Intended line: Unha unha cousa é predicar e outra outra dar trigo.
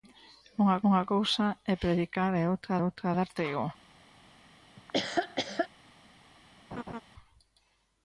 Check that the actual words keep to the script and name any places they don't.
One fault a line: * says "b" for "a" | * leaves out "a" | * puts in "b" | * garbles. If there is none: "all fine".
all fine